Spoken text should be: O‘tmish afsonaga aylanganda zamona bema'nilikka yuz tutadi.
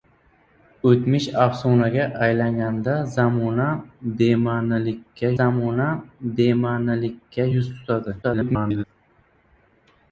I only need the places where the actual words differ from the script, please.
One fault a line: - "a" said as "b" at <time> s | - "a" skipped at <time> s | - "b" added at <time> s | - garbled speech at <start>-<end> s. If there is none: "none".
- "zamona bema'nilikka" added at 5.4 s
- garbled speech at 8.2-8.8 s